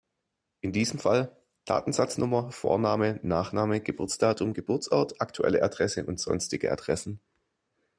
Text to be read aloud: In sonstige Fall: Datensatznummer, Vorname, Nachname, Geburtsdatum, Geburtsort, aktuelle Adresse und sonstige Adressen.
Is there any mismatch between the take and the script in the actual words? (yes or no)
yes